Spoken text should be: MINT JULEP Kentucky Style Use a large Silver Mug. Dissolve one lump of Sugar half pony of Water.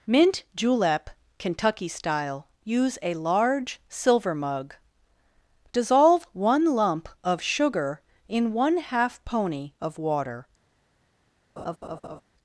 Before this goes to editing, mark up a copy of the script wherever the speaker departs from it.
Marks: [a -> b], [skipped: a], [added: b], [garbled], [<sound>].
MINT JULEP Kentucky Style Use a large Silver Mug. Dissolve one lump of Sugar [added: in one] half pony of Water. [laugh]